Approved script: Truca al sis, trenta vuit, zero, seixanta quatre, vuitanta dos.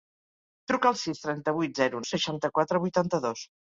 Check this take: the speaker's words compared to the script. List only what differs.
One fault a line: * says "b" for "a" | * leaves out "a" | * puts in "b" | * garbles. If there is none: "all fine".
all fine